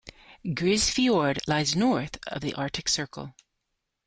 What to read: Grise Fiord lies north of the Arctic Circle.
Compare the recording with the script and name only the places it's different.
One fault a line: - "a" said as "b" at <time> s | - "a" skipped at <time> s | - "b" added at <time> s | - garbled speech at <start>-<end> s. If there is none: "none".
none